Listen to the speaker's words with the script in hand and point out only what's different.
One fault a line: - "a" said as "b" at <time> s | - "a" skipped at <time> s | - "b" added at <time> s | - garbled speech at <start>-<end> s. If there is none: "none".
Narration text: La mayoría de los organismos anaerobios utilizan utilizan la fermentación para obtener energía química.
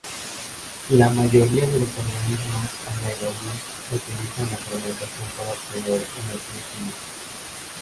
- "utilizan" skipped at 4.5 s